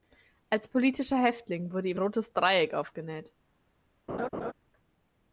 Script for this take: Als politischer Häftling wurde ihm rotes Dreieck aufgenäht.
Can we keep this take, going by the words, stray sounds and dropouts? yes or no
no